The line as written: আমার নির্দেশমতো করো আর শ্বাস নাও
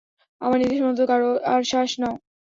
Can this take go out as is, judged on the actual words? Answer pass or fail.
pass